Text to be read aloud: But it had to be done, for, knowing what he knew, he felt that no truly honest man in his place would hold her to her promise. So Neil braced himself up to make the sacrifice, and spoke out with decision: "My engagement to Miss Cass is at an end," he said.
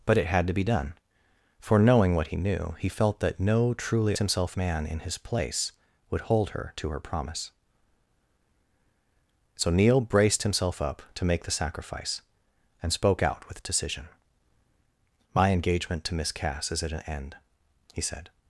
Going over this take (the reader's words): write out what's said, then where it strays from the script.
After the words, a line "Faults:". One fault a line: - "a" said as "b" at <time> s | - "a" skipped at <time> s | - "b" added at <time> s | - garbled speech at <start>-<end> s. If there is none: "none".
But it had to be done, for, knowing what he knew, he felt that no truly himself man in his place would hold her to her promise. So Neil braced himself up to make the sacrifice, and spoke out with decision: "My engagement to Miss Cass is at an end," he said.
Faults:
- "honest" said as "himself" at 4.2 s